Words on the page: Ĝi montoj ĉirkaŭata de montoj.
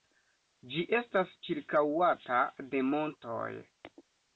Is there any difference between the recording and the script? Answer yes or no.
yes